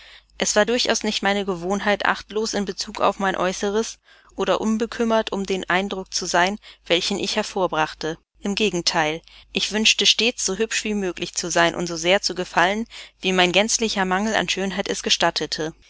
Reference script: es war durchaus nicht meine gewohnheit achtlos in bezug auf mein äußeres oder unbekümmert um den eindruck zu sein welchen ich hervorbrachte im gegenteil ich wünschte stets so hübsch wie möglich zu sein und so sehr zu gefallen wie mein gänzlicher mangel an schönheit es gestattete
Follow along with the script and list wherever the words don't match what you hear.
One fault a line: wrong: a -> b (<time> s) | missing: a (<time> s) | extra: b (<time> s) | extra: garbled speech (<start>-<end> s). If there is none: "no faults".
no faults